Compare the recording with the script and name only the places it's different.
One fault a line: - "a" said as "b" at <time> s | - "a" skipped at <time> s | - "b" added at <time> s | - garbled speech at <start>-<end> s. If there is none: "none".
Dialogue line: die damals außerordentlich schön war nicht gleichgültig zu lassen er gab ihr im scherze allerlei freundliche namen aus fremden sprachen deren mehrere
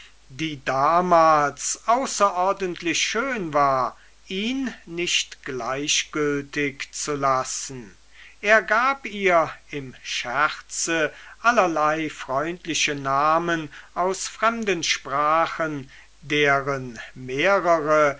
- "ihn" added at 4.2 s